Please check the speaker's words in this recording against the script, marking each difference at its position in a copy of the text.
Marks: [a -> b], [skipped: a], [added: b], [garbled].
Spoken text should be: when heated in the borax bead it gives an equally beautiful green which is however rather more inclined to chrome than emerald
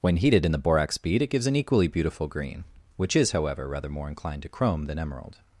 when heated in the borax bead it gives an equally beautiful green which is however rather more inclined to chrome than emerald